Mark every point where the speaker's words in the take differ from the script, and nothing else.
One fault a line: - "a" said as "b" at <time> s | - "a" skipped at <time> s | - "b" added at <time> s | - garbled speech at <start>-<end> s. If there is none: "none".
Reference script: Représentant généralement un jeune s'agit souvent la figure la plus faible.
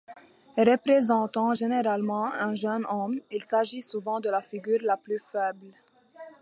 - "homme il" added at 2.9 s
- "de" added at 4.2 s